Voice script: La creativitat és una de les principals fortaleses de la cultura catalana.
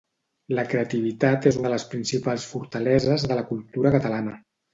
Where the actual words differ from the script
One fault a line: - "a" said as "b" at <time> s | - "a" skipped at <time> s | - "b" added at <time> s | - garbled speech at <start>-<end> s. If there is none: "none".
- "una" skipped at 1.6 s